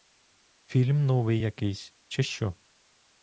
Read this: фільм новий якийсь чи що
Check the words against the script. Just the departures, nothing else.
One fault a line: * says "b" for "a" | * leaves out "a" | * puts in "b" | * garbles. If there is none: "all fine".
all fine